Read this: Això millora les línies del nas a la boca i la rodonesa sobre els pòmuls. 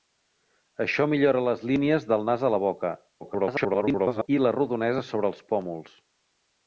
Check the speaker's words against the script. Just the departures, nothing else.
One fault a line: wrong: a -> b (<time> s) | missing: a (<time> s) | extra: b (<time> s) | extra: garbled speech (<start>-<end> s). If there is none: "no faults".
extra: garbled speech (3.2-4.3 s)